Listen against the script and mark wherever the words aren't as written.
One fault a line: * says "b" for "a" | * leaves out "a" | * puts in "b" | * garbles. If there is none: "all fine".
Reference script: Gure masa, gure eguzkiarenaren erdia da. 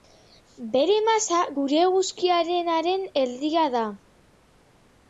* says "Bere" for "Gure"